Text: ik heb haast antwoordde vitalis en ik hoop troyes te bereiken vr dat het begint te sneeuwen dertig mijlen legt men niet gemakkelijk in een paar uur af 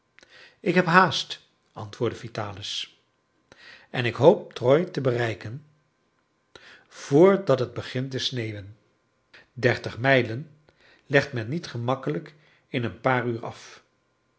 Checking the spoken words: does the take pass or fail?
pass